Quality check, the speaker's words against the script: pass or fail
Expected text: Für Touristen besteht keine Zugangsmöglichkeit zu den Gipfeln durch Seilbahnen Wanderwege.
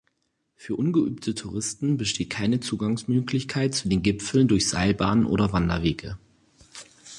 fail